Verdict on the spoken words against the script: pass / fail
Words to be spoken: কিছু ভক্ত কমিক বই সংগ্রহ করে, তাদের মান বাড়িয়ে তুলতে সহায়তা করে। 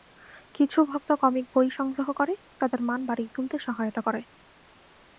pass